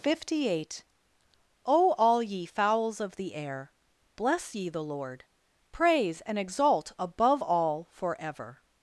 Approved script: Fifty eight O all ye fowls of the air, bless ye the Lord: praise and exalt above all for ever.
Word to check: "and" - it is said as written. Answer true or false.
true